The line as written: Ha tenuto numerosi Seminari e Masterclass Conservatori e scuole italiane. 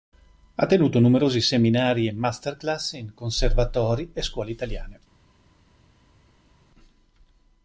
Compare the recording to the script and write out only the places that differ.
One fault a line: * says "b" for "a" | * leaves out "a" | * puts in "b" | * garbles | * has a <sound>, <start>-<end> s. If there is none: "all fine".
* puts in "in"